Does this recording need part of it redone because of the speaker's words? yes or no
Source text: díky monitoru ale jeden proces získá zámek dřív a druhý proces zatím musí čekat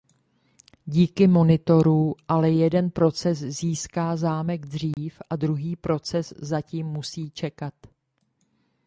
no